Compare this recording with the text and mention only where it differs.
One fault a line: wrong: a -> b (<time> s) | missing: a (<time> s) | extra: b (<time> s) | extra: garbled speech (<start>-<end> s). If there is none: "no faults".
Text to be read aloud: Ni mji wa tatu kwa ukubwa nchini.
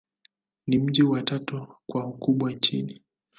no faults